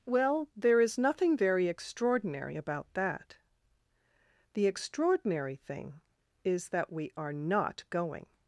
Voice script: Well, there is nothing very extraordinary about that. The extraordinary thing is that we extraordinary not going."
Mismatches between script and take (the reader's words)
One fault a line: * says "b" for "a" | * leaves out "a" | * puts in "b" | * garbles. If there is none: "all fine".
* says "are" for "extraordinary"